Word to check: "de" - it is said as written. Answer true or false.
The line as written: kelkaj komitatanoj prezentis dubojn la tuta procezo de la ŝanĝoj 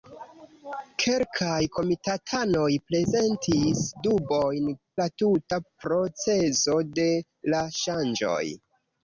true